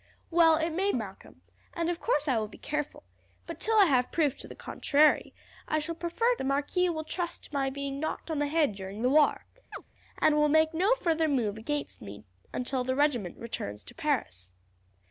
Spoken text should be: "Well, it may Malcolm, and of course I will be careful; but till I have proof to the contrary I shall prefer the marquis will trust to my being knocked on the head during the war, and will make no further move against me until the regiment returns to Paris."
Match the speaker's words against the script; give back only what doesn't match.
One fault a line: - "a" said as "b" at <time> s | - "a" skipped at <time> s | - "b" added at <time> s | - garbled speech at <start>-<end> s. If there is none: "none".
none